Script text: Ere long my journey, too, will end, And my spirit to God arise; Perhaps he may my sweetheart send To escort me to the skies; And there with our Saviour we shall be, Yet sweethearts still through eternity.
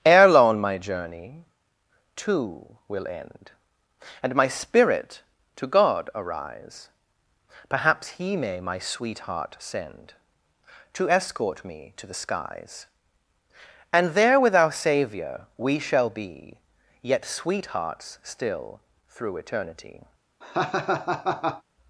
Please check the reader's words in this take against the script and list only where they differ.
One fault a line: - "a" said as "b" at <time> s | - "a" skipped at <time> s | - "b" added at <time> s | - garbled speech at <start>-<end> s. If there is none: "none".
none